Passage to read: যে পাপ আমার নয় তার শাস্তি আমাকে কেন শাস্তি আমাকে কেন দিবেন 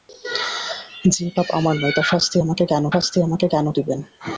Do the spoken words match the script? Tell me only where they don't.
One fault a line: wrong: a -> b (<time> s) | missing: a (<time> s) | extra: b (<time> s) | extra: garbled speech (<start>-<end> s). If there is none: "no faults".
no faults